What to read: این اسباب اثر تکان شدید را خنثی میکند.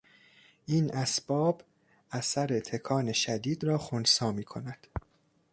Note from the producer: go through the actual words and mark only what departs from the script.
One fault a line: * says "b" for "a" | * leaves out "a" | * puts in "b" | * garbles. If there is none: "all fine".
all fine